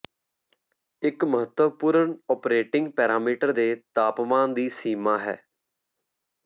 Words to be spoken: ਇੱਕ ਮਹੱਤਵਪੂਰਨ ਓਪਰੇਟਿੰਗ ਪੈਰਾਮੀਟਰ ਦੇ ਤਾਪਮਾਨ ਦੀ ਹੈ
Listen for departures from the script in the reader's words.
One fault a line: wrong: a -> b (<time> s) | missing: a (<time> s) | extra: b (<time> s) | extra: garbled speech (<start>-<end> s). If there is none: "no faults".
extra: ਸੀਮਾ (4.7 s)